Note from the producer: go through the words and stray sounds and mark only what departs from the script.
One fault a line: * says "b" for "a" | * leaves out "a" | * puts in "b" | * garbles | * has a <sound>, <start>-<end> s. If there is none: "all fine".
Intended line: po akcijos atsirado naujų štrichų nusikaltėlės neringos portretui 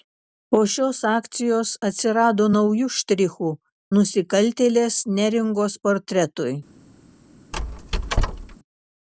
* puts in "šios"
* has a squeak, 7.5-8.6 s